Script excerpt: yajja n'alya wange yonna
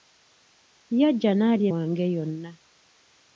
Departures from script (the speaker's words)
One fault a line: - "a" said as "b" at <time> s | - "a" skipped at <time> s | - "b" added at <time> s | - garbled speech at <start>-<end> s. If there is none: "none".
none